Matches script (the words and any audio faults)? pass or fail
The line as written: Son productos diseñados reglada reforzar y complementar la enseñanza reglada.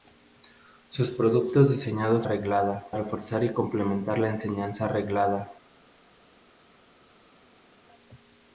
pass